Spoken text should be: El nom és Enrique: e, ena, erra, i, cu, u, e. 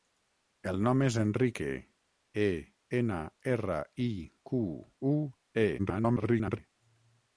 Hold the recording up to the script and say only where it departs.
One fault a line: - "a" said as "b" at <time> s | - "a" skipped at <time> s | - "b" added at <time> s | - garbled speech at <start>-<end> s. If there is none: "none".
- garbled speech at 5.8-6.6 s